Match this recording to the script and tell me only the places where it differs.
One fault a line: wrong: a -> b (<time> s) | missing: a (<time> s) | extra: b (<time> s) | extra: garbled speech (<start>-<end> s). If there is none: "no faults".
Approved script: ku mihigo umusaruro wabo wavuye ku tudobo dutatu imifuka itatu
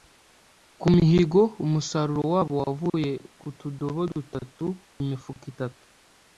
no faults